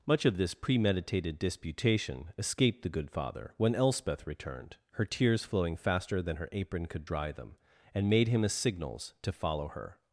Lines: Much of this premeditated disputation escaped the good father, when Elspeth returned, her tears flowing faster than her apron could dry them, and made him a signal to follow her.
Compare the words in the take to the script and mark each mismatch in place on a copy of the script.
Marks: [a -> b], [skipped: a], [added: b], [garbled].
Much of this premeditated disputation escaped the good father, when Elspeth returned, her tears flowing faster than her apron could dry them, and made him a [signal -> signals] to follow her.